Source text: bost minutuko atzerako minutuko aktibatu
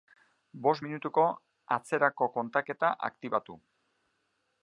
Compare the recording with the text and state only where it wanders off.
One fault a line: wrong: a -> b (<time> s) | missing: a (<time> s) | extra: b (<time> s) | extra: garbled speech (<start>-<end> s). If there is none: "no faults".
wrong: minutuko -> kontaketa (2.4 s)